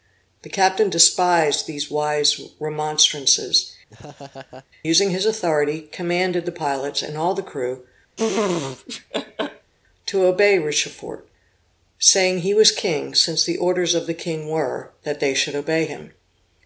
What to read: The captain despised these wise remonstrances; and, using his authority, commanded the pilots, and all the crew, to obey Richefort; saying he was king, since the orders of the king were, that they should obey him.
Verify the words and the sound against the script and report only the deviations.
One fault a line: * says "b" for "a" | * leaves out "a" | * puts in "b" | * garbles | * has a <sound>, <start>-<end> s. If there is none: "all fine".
* leaves out "and"
* has a laugh, 3.9-4.7 s
* has a laugh, 8.2-9.7 s